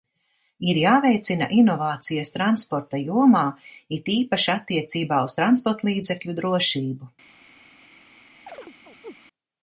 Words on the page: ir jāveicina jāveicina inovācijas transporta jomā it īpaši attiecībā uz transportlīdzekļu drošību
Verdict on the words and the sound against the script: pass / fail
fail